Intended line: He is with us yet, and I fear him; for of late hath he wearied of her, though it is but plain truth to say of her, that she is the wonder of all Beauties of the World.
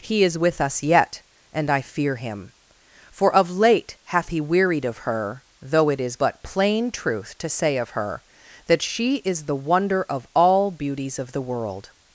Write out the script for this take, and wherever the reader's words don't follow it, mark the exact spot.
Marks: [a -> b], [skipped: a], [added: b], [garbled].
He is with us yet, and I fear him; for of late hath he wearied of her, though it is but plain truth to say of her, that she is the wonder of all Beauties of the World.